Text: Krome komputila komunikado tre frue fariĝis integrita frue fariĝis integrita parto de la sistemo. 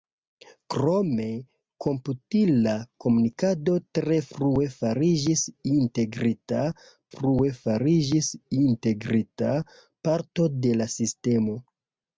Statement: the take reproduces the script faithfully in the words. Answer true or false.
true